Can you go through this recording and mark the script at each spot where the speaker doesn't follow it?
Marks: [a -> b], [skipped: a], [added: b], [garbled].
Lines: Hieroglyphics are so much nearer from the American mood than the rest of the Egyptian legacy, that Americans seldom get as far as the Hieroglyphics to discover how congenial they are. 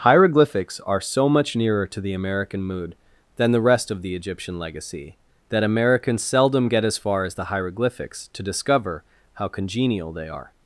Hieroglyphics are so much nearer [from -> to] the American mood than the rest of the Egyptian legacy, that Americans seldom get as far as the Hieroglyphics to discover how congenial they are.